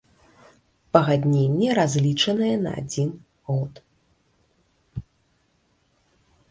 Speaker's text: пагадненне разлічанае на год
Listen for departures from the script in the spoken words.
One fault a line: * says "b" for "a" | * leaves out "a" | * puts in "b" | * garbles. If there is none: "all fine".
* puts in "адзін"